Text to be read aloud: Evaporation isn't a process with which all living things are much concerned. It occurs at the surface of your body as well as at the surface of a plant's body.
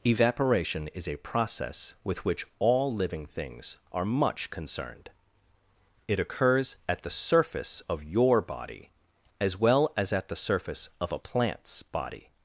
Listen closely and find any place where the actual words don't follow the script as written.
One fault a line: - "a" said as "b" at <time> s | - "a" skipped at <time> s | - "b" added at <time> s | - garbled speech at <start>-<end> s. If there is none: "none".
- "isn't" said as "is" at 0.9 s